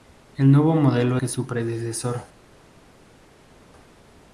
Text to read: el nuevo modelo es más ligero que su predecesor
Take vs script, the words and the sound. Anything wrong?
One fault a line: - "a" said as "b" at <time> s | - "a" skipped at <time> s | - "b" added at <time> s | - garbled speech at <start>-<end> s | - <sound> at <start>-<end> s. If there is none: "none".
- "es más ligero" skipped at 1.2 s